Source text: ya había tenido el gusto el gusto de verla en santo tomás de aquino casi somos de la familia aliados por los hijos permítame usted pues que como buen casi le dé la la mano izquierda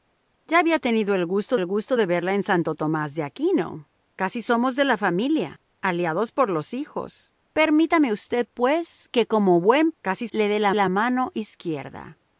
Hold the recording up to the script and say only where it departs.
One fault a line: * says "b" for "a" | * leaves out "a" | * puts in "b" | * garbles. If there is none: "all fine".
all fine